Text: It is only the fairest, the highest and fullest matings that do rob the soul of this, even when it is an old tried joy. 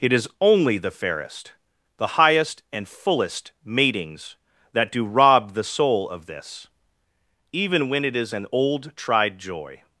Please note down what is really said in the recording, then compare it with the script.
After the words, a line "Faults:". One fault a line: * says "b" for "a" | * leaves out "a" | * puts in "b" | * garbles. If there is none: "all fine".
It is only the fairest, the highest and fullest matings that do rob the soul of this, even when it is an old tried joy.
Faults:
all fine